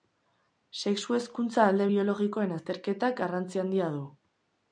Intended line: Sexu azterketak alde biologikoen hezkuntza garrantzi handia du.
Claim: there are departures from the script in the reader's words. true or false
true